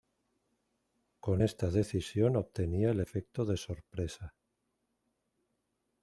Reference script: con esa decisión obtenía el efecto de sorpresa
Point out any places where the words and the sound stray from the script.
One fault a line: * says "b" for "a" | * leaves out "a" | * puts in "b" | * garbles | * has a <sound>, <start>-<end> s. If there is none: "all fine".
* says "esta" for "esa"